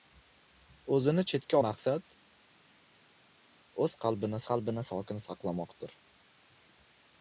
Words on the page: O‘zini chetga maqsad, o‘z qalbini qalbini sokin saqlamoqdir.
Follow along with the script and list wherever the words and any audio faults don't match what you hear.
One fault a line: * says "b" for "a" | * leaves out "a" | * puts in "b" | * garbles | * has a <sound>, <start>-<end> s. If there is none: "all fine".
all fine